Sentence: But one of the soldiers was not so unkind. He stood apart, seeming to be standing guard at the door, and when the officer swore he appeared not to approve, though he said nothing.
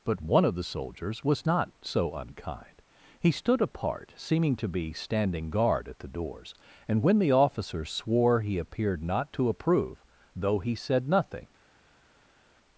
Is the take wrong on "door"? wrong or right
wrong